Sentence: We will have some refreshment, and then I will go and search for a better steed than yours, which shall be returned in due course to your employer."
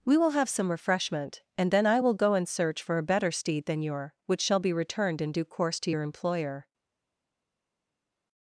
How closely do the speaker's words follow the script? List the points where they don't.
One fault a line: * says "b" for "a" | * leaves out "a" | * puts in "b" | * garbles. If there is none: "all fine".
* says "your" for "yours"